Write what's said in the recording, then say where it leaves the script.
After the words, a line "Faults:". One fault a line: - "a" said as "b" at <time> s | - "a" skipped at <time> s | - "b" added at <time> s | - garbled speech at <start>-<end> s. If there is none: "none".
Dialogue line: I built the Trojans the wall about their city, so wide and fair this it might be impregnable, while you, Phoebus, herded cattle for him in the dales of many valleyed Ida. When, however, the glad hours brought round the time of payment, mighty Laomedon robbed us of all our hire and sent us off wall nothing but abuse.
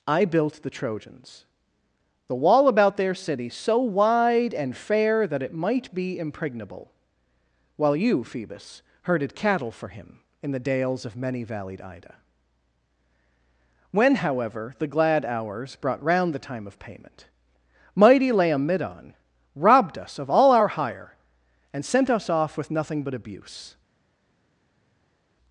I built the Trojans the wall about their city, so wide and fair that it might be impregnable, while you, Phoebus, herded cattle for him in the dales of many valleyed Ida. When, however, the glad hours brought round the time of payment, mighty Laomedon robbed us of all our hire and sent us off with nothing but abuse.
Faults:
- "this" said as "that" at 5.3 s
- "wall" said as "with" at 22.6 s